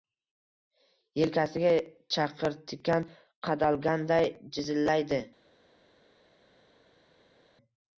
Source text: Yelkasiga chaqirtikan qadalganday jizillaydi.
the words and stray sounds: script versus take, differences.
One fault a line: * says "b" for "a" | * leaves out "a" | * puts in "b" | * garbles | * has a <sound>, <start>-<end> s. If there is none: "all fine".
all fine